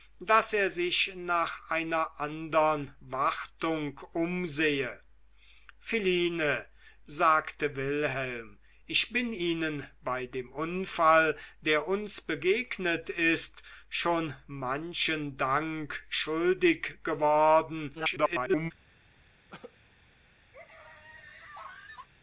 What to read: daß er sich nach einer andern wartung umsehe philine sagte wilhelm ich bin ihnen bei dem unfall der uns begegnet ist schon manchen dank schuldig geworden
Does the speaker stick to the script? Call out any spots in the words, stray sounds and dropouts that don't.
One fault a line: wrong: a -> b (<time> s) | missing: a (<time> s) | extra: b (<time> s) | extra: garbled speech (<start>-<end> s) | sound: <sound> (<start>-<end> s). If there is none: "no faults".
extra: garbled speech (17.9-18.7 s)
sound: cough (19.5-19.8 s)
sound: laugh (20.5-22.1 s)